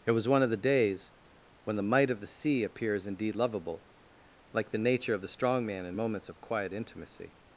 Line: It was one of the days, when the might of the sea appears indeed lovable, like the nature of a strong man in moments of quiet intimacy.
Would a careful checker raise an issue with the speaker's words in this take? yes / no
yes